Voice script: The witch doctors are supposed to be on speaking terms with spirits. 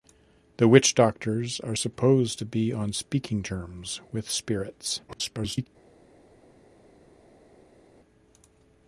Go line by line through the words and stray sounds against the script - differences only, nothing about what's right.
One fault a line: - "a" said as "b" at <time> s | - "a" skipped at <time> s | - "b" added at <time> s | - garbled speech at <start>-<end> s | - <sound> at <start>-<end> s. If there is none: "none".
- garbled speech at 5.1-5.7 s